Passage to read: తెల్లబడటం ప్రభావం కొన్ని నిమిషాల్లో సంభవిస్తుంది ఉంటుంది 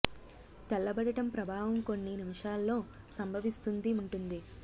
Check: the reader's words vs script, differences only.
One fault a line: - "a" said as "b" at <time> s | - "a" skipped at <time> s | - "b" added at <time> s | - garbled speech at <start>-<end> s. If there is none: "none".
none